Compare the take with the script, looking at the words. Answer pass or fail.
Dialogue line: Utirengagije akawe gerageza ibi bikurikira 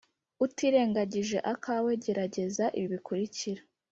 pass